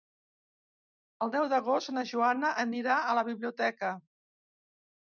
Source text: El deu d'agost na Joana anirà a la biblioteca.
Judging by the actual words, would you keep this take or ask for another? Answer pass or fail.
pass